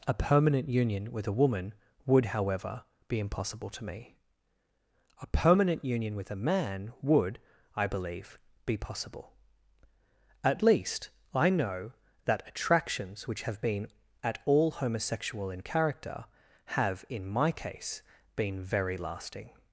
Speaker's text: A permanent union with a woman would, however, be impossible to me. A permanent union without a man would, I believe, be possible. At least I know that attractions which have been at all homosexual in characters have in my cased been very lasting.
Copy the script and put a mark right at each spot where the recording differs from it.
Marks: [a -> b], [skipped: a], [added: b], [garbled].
A permanent union with a woman would, however, be impossible to me. A permanent union [without -> with] a man would, I believe, be possible. At least I know that attractions which have been at all homosexual in [characters -> character] have in my [cased -> case] been very lasting.